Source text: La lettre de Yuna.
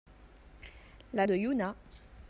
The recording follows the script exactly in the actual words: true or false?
false